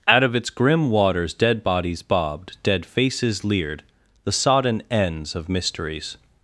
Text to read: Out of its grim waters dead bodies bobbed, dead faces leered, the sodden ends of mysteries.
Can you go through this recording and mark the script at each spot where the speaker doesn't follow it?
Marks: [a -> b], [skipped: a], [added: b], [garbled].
Out of its grim waters dead bodies bobbed, dead faces leered, the sodden ends of mysteries.